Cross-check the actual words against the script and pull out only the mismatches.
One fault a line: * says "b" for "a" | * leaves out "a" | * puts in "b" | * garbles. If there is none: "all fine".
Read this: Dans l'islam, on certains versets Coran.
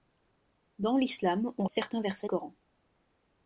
all fine